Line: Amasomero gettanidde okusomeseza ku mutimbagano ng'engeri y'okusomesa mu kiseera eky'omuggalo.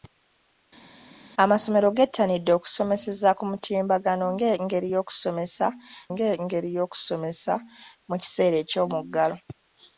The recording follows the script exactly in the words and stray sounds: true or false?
false